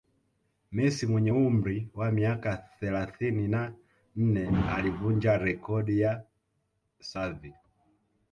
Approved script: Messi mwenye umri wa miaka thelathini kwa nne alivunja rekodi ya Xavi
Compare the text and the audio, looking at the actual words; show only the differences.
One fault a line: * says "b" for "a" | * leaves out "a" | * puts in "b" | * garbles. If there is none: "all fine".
* says "na" for "kwa"